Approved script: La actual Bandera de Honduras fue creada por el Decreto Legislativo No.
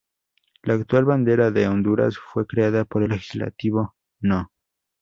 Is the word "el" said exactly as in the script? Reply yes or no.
no